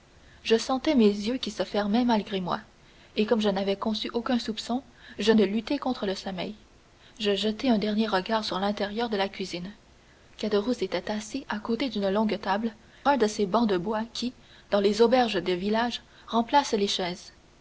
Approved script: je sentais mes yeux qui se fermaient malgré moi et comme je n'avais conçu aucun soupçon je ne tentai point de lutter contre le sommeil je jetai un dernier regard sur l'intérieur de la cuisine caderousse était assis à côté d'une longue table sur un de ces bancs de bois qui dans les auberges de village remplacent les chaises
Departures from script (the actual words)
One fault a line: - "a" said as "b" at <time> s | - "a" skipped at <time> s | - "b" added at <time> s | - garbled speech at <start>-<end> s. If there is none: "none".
- "ne tentai point" skipped at 5.3 s
- "sur" skipped at 12.7 s